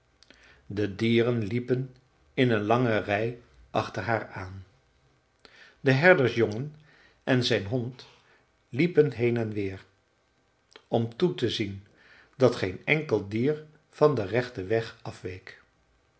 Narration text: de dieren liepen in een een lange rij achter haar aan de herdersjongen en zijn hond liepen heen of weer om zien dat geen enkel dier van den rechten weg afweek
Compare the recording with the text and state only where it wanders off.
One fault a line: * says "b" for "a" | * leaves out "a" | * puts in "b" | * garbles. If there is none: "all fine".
* leaves out "een"
* says "en" for "of"
* puts in "toe te"